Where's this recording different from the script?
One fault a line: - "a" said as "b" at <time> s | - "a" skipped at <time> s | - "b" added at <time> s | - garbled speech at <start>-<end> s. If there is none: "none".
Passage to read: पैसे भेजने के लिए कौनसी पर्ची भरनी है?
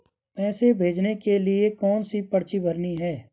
none